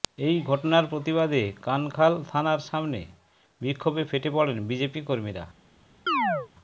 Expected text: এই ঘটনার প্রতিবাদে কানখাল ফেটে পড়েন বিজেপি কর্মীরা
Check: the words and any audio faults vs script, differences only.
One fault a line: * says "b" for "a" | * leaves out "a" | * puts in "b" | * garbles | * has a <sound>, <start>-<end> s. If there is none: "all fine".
* puts in "থানার সামনে বিক্ষোভে"
* has a chirp, 6.1-6.5 s